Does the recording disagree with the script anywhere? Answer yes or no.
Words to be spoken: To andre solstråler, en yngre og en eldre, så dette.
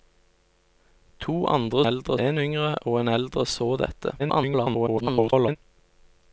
yes